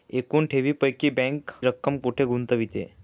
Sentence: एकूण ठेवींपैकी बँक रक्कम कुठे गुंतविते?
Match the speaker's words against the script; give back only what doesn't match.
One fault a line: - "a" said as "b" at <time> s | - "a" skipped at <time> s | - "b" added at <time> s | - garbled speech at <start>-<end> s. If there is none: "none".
none